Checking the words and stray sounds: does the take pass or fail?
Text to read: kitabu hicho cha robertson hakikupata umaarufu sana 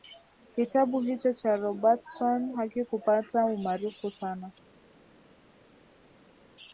pass